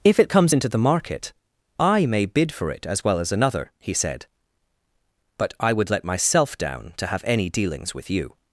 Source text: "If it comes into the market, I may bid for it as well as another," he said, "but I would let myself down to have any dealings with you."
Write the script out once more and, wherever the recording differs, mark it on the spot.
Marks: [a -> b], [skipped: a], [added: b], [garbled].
"If it comes into the market, I may bid for it as well as another," he said, "but I would let myself down to have any dealings with you."